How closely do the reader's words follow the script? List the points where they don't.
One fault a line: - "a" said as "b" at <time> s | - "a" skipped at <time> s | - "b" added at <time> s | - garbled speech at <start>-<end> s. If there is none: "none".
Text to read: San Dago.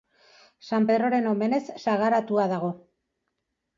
- "Pedroren omenez sagaratua" added at 0.9 s